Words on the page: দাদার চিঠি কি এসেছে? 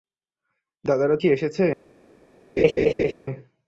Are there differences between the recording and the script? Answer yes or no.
yes